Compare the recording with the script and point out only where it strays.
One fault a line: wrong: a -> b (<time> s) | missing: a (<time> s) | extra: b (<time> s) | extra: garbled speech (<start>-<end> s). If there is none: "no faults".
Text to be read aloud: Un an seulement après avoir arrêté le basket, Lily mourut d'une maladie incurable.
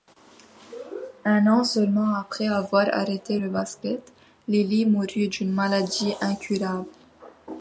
no faults